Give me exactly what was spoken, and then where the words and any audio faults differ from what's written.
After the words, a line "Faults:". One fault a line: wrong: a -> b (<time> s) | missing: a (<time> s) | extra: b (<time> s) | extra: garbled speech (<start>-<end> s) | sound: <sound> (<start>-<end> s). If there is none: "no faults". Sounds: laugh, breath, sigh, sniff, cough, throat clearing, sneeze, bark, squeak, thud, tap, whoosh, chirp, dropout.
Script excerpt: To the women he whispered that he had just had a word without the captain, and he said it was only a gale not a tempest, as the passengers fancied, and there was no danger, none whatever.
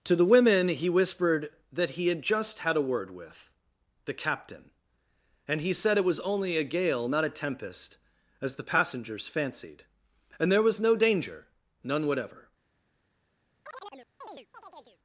To the women he whispered that he had just had a word with the captain, and he said it was only a gale not a tempest, as the passengers fancied, and there was no danger, none whatever.
Faults:
wrong: without -> with (3.1 s)
sound: chirp (13.6-15.0 s)